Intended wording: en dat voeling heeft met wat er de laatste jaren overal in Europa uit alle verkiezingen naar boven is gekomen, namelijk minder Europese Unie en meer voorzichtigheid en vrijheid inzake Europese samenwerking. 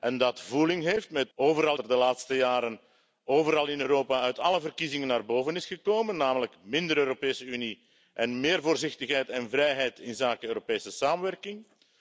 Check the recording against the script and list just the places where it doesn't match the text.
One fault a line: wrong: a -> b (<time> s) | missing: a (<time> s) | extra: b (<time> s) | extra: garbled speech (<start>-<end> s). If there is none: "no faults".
wrong: wat -> overal (1.3 s)